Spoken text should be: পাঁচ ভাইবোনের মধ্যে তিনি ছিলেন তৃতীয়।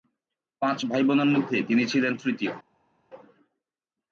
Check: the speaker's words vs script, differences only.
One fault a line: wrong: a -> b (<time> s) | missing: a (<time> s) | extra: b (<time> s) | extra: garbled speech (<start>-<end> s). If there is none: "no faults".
no faults